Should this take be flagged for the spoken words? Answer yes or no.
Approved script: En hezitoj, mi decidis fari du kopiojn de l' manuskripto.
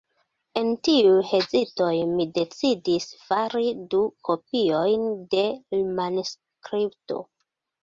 yes